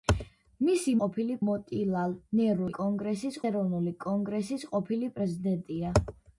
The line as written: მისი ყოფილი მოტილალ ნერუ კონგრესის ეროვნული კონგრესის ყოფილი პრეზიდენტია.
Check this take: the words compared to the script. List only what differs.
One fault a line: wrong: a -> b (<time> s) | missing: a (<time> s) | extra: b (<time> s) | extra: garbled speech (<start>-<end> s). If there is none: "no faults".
no faults